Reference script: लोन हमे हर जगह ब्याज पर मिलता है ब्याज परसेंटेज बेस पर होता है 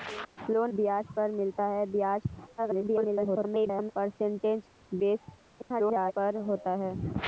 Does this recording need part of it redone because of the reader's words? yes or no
yes